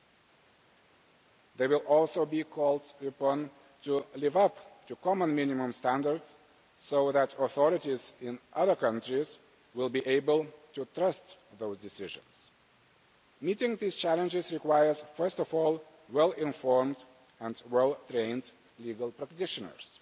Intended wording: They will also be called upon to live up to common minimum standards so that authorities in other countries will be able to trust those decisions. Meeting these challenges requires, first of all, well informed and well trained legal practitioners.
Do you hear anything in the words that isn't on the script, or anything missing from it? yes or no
no